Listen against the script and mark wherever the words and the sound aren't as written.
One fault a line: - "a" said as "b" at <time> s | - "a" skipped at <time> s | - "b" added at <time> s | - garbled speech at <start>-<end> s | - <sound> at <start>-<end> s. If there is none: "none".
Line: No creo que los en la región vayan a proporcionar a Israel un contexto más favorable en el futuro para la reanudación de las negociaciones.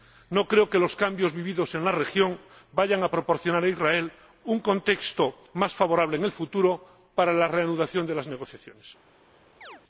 - "cambios vividos" added at 0.9 s
- chirp at 9.6-9.8 s